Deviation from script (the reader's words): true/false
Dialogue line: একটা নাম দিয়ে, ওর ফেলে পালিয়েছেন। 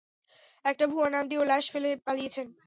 true